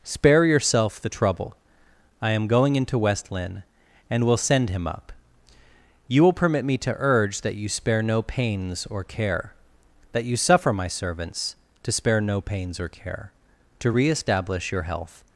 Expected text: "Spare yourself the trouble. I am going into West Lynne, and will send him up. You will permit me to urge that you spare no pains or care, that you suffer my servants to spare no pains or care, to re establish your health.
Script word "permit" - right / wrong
right